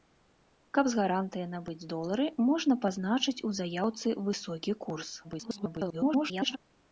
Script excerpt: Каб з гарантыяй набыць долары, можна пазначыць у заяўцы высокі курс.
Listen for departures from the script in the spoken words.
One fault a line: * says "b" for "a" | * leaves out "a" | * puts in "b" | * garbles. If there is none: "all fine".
* garbles